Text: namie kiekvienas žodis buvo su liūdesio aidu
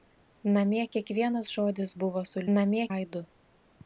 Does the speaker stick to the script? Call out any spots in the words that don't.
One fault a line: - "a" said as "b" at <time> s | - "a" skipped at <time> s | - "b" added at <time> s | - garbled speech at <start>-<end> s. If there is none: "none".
- "liūdesio" said as "namie" at 2.6 s